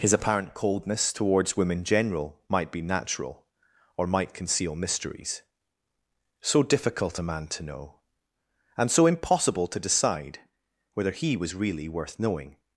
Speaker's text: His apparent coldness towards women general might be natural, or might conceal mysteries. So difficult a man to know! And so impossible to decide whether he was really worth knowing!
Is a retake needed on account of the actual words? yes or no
no